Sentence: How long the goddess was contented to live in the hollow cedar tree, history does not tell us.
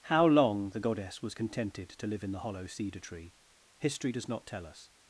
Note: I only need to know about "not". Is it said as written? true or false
true